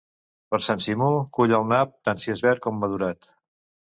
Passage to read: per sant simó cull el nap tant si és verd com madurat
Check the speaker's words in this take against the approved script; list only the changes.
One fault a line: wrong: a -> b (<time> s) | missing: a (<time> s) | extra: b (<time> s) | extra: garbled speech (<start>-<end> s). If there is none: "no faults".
no faults